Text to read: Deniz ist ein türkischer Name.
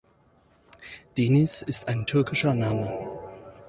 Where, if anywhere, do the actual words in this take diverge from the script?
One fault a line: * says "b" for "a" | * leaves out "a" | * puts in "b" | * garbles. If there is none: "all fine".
all fine